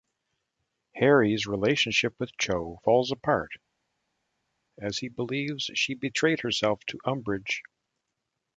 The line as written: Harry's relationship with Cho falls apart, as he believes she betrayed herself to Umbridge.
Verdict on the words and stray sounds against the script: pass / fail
pass